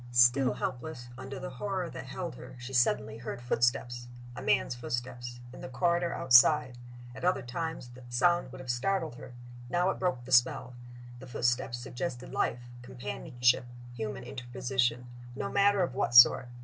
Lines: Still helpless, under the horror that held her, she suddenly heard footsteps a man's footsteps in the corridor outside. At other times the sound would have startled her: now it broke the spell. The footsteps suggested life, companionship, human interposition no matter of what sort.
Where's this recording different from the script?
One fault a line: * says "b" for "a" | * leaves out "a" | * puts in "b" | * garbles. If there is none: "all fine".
all fine